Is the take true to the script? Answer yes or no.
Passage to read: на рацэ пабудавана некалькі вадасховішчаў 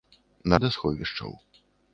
no